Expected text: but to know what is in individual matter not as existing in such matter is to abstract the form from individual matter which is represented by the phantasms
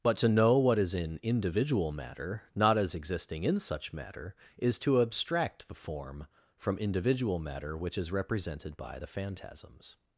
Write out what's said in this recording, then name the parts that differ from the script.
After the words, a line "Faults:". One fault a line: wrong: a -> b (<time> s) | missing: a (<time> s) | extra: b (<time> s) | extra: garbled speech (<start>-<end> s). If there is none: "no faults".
but to know what is in individual matter not as existing in such matter is to abstract the form from individual matter which is represented by the phantasms
Faults:
no faults